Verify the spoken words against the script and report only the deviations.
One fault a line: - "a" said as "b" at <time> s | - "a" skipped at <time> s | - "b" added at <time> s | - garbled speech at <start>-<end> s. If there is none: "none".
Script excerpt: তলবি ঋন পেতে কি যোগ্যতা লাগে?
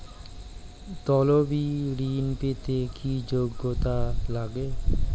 none